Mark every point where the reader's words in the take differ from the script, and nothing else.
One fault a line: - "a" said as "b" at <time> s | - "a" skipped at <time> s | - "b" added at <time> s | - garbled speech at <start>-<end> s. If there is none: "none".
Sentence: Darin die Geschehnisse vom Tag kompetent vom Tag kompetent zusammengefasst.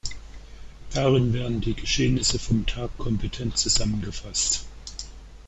- "werden" added at 1.3 s
- "vom Tag kompetent" skipped at 3.6 s